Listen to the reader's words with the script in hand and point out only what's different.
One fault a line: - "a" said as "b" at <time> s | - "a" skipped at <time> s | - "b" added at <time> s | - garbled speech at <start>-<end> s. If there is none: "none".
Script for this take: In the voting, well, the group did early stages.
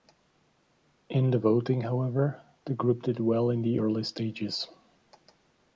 - "well" said as "however" at 1.8 s
- "well in the" added at 3.2 s